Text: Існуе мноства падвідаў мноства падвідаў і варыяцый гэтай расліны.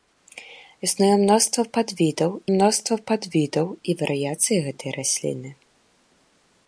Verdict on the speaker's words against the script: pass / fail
pass